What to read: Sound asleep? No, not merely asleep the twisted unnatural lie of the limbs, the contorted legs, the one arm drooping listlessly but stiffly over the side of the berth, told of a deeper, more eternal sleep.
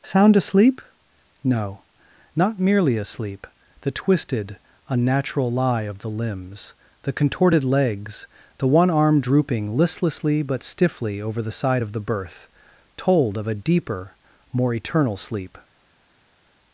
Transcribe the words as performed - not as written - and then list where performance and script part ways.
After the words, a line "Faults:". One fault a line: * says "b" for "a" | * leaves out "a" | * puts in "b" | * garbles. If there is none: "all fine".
Sound asleep? No, not merely asleep the twisted unnatural lie of the limbs, the contorted legs, the one arm drooping listlessly but stiffly over the side of the berth, told of a deeper, more eternal sleep.
Faults:
all fine